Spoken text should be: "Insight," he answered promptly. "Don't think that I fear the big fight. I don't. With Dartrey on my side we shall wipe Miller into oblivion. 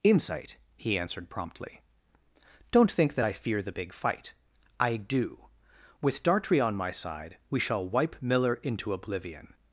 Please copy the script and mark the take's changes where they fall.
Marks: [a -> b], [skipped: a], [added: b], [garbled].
"Insight," he answered promptly. "Don't think that I fear the big fight. I [don't. -> do] With Dartrey on my side we shall wipe Miller into oblivion.